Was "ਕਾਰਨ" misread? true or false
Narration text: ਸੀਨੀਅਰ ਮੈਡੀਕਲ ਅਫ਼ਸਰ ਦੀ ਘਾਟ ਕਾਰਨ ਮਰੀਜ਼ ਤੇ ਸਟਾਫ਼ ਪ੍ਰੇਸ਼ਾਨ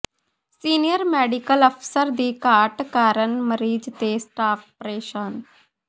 false